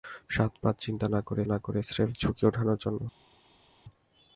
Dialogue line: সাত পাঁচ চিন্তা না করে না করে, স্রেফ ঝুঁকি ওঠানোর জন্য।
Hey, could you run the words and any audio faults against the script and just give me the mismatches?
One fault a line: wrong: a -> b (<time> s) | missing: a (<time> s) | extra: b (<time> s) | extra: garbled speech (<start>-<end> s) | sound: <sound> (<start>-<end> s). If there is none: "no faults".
no faults